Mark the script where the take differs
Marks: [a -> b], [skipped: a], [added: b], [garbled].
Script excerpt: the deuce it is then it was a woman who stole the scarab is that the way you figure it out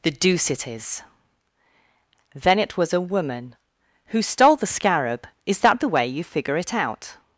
the deuce it is then it was a woman who stole the scarab is that the way you figure it out